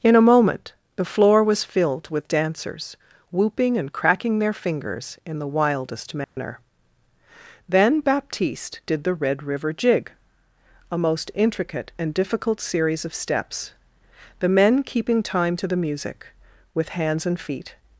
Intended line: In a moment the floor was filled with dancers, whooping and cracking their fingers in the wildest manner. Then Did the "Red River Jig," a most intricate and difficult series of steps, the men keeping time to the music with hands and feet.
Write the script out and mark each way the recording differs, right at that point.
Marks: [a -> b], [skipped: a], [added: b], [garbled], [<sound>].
In a moment the floor was filled with dancers, whooping and cracking their fingers in the wildest manner. [dropout] Then [added: Baptiste] Did the "Red River Jig," a most intricate and difficult series of steps, the men keeping time to the music with hands and feet.